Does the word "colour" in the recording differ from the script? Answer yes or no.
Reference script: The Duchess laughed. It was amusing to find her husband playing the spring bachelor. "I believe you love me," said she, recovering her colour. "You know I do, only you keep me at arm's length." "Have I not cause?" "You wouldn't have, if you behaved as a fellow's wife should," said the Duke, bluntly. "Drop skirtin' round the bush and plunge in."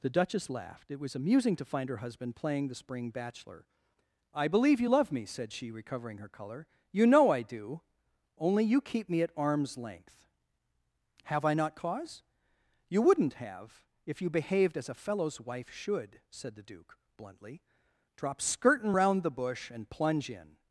no